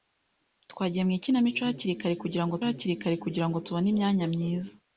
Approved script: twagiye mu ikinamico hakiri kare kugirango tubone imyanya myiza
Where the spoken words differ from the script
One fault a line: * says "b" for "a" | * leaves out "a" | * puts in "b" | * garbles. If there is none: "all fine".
* puts in "hakiri kare kugirango"